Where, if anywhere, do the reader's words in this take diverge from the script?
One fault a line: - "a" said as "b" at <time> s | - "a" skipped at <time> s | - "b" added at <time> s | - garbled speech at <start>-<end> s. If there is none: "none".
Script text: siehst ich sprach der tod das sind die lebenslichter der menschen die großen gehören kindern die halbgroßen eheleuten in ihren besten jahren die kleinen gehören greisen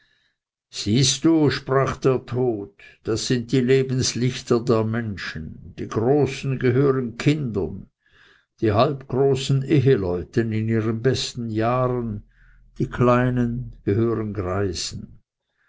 - "ich" said as "du" at 1.2 s